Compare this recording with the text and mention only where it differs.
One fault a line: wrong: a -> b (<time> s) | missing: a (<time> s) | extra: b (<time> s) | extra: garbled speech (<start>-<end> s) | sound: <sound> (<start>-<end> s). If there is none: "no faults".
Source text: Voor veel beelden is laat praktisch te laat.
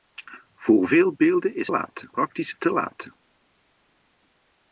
no faults